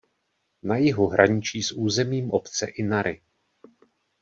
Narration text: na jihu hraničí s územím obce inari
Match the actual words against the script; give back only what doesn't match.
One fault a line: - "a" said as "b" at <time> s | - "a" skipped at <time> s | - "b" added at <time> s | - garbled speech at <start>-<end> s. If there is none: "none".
none